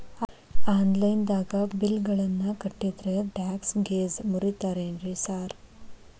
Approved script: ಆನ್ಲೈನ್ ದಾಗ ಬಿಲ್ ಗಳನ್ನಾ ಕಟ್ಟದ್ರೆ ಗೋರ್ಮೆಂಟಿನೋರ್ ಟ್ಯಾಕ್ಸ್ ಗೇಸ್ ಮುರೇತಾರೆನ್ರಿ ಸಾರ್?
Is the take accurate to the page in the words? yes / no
no